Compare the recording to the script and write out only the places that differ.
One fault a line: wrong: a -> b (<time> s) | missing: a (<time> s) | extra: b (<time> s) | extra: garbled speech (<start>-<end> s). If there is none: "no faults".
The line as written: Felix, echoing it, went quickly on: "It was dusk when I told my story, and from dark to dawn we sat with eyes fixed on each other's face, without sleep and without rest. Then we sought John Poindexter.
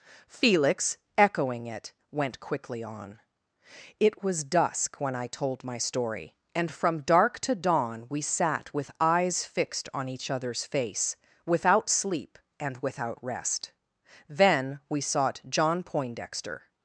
no faults